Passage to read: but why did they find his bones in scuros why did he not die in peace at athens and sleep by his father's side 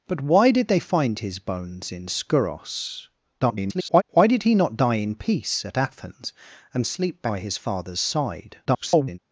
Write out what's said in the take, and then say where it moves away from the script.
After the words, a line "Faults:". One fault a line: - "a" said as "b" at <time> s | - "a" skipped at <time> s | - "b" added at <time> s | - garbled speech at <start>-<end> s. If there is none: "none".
but why did they find his bones in scuros [garbled] why did he not die in peace at athens and sleep by his father's side [garbled]
Faults:
- garbled speech at 3.4-4.0 s
- garbled speech at 8.7-9.2 s